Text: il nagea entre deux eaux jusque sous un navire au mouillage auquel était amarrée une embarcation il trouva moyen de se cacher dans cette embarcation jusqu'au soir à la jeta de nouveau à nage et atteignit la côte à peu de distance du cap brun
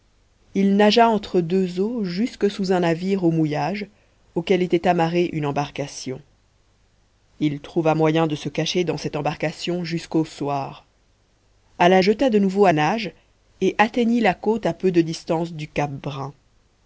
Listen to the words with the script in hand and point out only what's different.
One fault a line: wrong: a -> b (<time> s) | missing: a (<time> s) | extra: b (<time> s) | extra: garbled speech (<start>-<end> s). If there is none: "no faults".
no faults